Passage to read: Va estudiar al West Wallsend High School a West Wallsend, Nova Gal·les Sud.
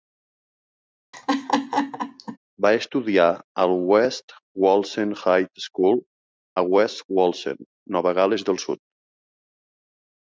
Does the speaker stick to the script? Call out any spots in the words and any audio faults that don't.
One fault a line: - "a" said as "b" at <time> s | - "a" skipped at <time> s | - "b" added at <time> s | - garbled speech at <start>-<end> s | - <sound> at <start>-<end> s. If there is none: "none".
- laugh at 1.1-2.4 s
- "del" added at 8.5 s